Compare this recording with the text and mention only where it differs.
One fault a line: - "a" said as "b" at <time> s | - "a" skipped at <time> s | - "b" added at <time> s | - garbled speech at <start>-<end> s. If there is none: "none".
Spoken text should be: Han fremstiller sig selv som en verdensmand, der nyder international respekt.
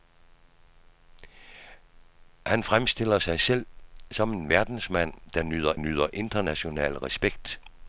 - "nyder" added at 5.8 s